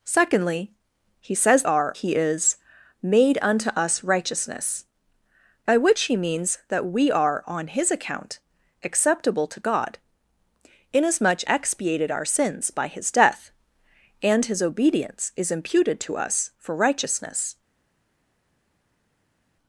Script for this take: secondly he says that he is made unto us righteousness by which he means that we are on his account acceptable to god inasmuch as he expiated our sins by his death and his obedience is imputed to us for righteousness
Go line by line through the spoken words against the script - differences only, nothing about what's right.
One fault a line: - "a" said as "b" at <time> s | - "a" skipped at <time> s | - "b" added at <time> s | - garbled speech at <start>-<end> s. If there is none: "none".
- "that" said as "are" at 1.6 s
- "as he" skipped at 11.4 s